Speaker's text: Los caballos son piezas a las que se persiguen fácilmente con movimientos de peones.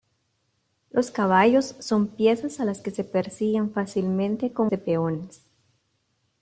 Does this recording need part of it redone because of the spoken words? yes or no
yes